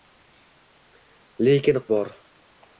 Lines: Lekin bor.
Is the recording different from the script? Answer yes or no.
no